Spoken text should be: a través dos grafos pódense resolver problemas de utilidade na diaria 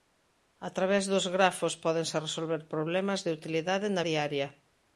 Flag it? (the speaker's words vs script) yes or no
no